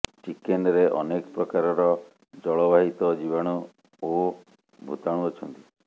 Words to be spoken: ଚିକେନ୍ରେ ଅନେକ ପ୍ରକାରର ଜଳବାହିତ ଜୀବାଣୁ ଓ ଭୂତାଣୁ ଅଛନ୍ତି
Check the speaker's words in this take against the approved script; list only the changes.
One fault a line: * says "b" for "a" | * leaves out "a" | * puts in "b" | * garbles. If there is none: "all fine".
all fine